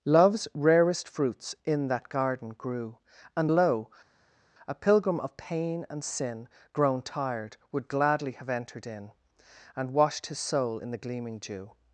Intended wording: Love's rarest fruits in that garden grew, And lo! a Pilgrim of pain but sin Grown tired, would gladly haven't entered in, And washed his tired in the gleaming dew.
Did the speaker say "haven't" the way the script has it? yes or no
no